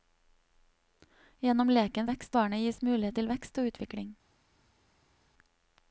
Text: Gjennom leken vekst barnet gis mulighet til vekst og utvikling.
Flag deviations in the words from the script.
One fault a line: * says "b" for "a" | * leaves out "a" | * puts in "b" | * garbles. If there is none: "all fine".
all fine